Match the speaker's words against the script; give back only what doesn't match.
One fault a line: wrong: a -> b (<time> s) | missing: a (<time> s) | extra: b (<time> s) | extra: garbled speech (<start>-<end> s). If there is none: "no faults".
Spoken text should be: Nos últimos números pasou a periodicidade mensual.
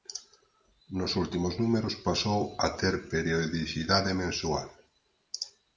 extra: ter (2.8 s)